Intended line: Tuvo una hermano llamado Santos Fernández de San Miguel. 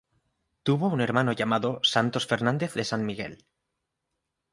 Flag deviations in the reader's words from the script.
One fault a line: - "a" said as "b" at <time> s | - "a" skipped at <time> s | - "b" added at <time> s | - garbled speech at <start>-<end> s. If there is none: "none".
- "una" said as "un" at 0.9 s